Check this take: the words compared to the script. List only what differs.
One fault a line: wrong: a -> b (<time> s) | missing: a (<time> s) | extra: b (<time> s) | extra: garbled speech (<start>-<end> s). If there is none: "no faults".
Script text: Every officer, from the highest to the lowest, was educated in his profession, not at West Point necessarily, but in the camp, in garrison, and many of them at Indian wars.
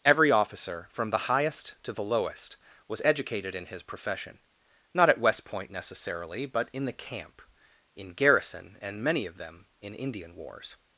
wrong: at -> in (9.8 s)